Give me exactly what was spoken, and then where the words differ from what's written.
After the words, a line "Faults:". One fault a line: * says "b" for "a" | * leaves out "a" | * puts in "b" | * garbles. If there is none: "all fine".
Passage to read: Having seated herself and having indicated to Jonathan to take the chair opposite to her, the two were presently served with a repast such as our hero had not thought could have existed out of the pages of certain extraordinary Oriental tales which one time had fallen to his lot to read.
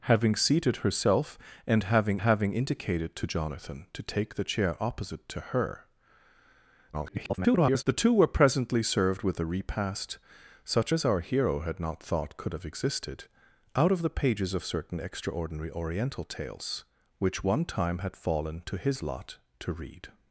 Having seated herself and having having indicated to Jonathan to take the chair opposite to her, [garbled] the two were presently served with a repast such as our hero had not thought could have existed out of the pages of certain extraordinary Oriental tales which one time had fallen to his lot to read.
Faults:
* puts in "having"
* garbles